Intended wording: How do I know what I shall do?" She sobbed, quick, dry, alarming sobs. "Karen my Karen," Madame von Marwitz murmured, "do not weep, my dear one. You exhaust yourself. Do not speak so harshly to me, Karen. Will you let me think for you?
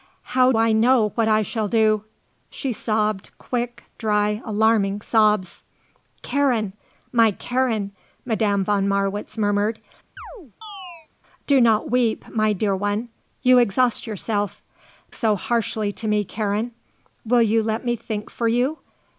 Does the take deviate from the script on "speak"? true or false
true